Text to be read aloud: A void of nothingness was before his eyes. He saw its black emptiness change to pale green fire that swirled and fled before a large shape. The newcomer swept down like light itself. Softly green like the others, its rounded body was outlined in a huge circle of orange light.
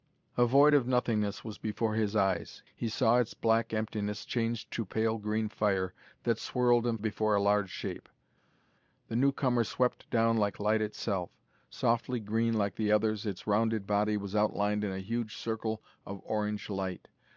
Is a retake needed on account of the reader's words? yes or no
yes